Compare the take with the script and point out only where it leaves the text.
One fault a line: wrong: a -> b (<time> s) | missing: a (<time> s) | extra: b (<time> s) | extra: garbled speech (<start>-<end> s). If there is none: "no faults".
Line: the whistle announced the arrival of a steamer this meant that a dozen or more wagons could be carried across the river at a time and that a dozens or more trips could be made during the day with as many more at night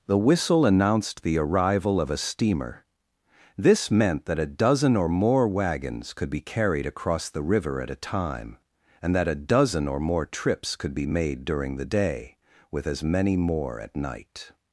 wrong: dozens -> dozen (9.3 s)